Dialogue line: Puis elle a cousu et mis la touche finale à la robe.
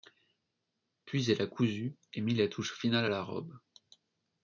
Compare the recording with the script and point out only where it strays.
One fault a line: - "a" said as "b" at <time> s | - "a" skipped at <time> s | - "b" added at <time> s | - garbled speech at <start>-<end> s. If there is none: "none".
none